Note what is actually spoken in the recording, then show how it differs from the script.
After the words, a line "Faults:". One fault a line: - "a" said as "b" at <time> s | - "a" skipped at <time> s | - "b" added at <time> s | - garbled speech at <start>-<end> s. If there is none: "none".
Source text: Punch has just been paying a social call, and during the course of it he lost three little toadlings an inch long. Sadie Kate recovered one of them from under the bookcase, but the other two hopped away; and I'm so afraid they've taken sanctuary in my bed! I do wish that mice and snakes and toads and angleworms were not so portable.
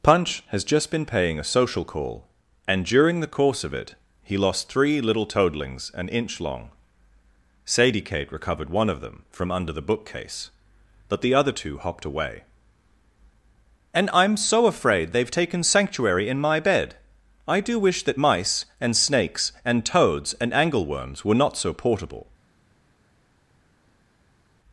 Punch has just been paying a social call, and during the course of it he lost three little toadlings an inch long. Sadie Kate recovered one of them from under the bookcase, but the other two hopped away; and I'm so afraid they've taken sanctuary in my bed! I do wish that mice and snakes and toads and angleworms were not so portable.
Faults:
none